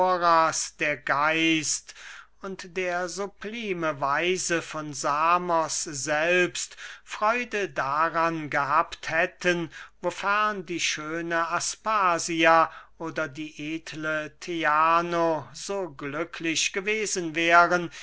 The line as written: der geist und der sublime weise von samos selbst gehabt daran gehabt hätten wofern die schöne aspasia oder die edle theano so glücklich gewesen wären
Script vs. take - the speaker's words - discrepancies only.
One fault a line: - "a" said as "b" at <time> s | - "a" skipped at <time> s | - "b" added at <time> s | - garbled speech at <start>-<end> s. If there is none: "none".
- "gehabt" said as "freude" at 7.0 s